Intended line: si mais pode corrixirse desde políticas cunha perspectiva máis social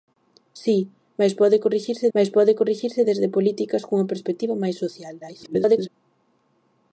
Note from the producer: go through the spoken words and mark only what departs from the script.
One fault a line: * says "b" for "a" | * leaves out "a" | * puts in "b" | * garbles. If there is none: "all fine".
* puts in "mais pode corrixirse"
* garbles